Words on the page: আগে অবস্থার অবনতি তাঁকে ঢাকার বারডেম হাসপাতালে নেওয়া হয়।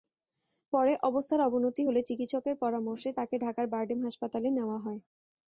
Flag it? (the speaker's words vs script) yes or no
yes